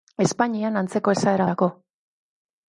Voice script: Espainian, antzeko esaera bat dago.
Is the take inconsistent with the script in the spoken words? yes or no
yes